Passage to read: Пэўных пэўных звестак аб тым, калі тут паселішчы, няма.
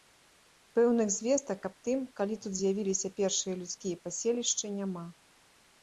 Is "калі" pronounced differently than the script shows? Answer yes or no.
no